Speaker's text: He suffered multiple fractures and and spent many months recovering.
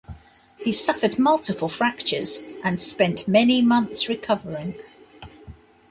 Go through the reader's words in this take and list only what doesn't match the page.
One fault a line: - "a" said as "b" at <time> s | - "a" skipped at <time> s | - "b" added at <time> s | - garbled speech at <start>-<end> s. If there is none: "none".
- "and" skipped at 2.8 s